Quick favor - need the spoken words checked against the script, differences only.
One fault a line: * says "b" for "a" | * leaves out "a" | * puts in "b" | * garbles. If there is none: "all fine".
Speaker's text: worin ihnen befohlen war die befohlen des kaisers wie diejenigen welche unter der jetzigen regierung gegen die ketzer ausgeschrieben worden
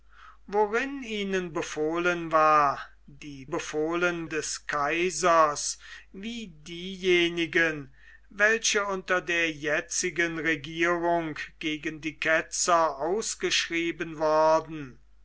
all fine